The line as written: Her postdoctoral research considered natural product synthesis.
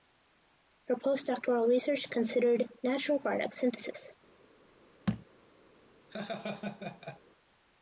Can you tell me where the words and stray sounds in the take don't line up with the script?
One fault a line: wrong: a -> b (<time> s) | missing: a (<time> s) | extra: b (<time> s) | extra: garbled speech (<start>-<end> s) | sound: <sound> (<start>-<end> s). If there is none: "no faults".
sound: thud (5.1-5.3 s)
sound: laugh (6.1-7.2 s)